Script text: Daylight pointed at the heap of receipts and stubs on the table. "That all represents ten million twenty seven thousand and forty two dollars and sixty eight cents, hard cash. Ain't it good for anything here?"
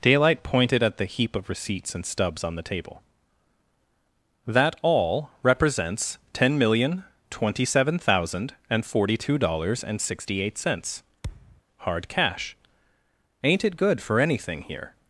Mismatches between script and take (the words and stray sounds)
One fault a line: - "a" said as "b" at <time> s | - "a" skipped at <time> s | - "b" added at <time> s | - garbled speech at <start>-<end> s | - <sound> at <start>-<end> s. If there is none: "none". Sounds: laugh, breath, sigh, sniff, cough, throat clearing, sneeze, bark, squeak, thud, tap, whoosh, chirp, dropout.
- thud at 11.2-11.6 s